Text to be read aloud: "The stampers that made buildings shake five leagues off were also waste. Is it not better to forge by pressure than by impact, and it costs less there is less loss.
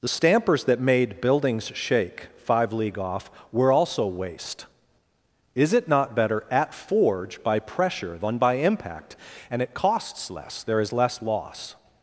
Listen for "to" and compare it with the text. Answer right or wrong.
wrong